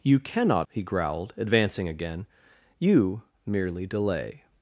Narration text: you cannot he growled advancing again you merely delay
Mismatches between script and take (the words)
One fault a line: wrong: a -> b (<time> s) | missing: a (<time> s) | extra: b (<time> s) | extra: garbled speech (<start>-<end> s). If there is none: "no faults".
no faults